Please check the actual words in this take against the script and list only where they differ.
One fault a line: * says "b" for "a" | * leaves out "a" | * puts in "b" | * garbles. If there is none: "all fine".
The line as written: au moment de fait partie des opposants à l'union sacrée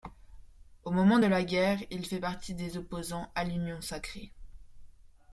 * puts in "la guerre il"